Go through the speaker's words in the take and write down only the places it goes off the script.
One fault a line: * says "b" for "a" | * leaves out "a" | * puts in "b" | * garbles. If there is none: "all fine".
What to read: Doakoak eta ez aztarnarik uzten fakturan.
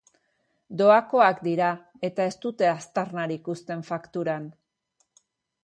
* puts in "dira"
* puts in "dute"